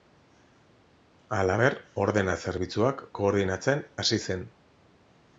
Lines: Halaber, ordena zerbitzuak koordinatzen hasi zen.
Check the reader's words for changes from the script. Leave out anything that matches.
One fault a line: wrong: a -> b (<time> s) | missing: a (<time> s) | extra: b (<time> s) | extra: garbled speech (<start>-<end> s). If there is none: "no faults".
no faults